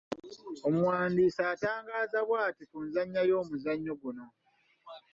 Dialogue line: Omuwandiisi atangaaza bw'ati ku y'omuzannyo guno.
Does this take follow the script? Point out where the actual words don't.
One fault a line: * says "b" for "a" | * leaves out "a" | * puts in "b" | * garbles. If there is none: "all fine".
* puts in "nzannya"